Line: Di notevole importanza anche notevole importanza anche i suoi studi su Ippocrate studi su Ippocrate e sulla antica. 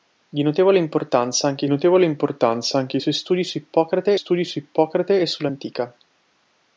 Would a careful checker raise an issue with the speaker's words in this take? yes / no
no